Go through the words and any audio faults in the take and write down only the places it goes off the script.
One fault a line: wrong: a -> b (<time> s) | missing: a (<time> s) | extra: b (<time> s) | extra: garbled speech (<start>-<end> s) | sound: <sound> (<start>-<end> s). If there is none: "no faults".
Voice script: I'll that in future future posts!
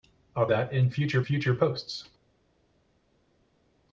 no faults